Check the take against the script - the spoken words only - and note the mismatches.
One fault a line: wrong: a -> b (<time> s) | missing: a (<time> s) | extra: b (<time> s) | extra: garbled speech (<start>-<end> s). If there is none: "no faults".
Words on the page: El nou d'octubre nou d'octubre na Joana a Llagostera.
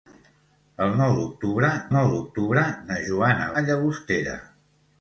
no faults